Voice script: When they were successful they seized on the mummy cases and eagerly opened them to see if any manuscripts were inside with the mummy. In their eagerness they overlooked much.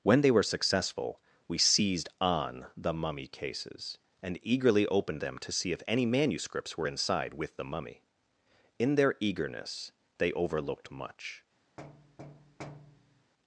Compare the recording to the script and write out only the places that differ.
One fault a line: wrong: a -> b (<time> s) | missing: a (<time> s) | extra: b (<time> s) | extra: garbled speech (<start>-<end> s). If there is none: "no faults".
wrong: they -> we (1.5 s)